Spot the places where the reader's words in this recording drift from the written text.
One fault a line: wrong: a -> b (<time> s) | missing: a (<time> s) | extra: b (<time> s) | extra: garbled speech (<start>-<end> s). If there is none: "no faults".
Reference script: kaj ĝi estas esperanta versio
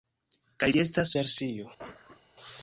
missing: esperanta (1.1 s)